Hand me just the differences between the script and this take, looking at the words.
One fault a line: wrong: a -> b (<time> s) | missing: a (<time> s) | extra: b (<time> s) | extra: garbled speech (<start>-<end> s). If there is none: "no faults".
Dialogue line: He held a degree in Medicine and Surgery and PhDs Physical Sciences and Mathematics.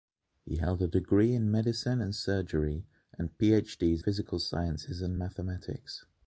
no faults